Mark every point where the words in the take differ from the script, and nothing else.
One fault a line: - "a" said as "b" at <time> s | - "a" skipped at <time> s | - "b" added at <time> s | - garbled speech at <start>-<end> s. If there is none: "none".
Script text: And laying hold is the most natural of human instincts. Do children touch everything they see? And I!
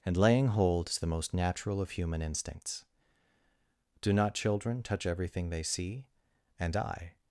- "not" added at 4.1 s